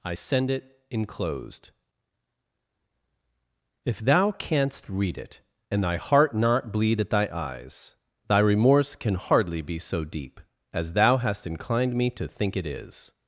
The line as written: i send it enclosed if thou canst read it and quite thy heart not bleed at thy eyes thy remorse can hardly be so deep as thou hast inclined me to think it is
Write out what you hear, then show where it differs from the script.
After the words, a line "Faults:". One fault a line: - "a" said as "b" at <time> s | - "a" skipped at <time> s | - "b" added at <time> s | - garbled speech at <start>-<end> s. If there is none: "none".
i send it enclosed if thou canst read it and thy heart not bleed at thy eyes thy remorse can hardly be so deep as thou hast inclined me to think it is
Faults:
- "quite" skipped at 5.8 s